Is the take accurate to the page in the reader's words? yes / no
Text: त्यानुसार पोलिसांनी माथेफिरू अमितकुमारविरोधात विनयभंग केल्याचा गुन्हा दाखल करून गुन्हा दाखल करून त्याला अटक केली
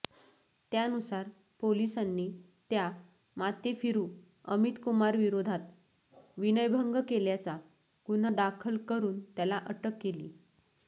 no